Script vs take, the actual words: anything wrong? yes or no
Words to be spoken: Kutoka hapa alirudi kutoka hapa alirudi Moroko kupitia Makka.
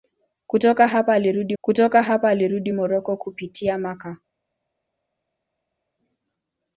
no